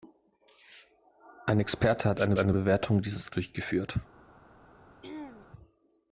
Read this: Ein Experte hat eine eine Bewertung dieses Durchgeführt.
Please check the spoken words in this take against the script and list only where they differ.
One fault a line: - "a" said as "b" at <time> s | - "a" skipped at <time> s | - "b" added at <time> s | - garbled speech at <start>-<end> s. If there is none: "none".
none